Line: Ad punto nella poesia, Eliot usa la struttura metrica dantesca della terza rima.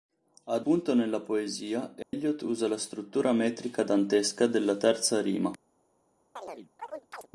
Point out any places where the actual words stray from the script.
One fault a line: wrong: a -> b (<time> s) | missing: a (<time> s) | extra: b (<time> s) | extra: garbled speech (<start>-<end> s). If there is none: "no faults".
no faults